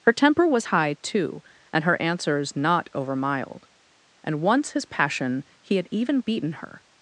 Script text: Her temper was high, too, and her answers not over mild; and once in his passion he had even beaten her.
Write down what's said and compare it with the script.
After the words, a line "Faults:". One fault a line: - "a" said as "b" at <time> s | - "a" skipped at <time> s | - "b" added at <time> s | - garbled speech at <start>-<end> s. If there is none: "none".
Her temper was high, too, and her answers not over mild; and once his passion he had even beaten her.
Faults:
- "in" skipped at 4.7 s